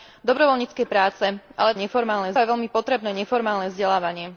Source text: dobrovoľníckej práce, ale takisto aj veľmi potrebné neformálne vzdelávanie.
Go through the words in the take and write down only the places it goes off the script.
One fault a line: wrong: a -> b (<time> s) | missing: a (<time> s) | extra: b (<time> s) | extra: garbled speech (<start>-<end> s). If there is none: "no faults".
wrong: takisto -> neformálne (1.7 s)